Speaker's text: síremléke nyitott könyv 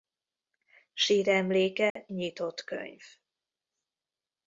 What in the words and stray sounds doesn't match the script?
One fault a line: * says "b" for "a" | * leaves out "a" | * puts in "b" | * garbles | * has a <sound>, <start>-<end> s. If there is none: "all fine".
* has a dropout, 1.9-2.0 s